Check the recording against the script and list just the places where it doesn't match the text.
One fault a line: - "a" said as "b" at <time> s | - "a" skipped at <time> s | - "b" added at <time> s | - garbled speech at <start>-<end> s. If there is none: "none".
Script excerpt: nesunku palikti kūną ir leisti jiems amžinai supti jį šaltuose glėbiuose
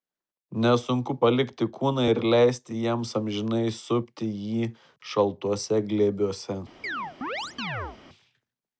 none